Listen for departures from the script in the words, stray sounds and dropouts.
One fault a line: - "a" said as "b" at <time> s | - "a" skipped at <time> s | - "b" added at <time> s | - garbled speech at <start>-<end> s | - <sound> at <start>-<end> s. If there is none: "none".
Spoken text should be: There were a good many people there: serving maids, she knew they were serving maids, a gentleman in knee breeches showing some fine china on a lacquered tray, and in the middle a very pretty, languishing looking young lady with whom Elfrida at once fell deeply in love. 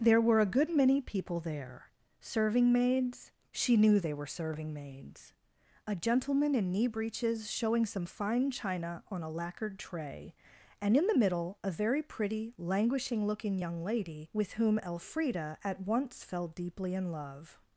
none